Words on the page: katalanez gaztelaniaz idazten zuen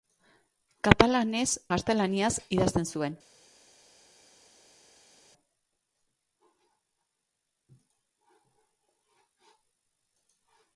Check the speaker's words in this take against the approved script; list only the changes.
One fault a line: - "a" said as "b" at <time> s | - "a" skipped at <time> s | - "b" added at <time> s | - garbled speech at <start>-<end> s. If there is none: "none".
none